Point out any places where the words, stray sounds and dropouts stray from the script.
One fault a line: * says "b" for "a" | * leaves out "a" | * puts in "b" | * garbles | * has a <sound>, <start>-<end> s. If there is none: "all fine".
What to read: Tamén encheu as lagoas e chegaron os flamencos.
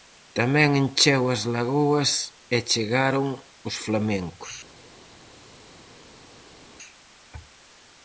all fine